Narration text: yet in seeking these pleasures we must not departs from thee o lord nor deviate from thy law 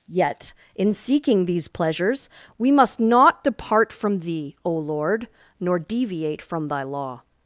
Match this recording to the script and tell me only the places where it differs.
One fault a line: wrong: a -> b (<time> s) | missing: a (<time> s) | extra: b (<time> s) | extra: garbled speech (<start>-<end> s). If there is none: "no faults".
wrong: departs -> depart (3.4 s)